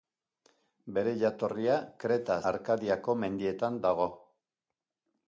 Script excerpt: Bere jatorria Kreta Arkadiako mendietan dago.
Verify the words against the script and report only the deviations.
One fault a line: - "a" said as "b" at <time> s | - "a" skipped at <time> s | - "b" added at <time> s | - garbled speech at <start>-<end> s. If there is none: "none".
none